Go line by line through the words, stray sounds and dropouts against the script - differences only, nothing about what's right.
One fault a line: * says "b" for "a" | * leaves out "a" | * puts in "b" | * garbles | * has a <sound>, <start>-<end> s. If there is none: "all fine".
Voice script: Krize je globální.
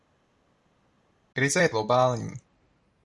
all fine